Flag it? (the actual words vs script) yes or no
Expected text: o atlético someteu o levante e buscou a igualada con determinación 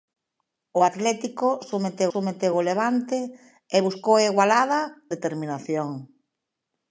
yes